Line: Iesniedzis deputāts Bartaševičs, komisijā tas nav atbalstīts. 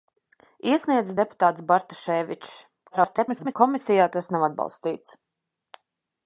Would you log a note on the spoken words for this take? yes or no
yes